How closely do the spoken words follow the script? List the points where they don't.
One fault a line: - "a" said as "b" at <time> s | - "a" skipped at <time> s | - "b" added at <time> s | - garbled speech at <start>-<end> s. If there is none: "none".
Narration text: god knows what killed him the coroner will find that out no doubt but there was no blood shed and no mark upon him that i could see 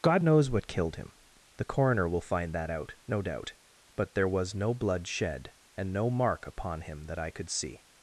none